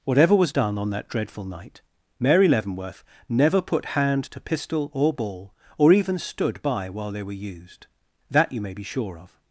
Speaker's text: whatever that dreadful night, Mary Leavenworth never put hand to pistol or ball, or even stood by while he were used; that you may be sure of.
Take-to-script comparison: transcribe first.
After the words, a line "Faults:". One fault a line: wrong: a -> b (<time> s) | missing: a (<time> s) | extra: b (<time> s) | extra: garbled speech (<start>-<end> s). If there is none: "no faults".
whatever was done on that dreadful night, Mary Leavenworth never put hand to pistol or ball, or even stood by while they were used; that you may be sure of.
Faults:
extra: was done on (0.3 s)
wrong: he -> they (7.1 s)